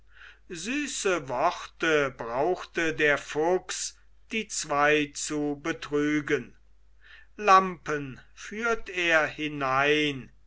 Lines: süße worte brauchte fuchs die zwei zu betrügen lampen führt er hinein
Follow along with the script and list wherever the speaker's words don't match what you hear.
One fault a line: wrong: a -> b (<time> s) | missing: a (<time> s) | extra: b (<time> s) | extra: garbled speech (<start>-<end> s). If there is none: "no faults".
extra: der (3.0 s)